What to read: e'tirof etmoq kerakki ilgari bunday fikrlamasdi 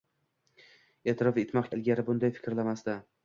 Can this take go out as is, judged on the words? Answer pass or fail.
fail